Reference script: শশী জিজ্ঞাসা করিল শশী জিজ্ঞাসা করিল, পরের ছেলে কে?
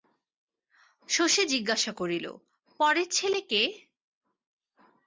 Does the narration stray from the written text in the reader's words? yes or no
yes